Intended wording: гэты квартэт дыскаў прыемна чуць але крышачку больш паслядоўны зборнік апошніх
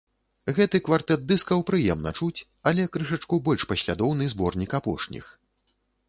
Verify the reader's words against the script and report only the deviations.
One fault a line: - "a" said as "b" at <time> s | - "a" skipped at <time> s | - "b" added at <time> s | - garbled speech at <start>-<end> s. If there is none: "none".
none